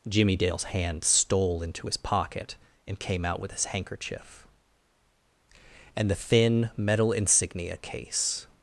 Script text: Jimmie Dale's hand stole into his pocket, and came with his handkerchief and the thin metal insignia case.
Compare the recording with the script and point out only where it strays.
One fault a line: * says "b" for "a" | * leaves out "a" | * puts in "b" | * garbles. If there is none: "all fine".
* puts in "out"